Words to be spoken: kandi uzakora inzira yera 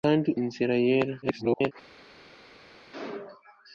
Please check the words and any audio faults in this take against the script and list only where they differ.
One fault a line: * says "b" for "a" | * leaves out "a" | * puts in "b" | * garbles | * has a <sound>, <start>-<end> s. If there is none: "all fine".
* leaves out "uzakora"
* garbles